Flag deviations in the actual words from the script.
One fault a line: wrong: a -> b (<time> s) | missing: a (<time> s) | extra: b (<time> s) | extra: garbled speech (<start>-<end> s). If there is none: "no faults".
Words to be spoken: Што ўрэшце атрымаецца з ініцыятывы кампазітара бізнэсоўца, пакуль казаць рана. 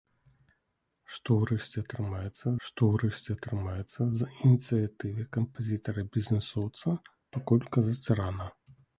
extra: што ўрэшце атрымаецца (2.7 s)